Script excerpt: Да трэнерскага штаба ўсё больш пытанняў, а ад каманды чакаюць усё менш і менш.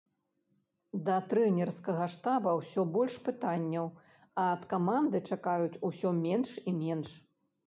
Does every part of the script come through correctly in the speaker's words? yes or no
yes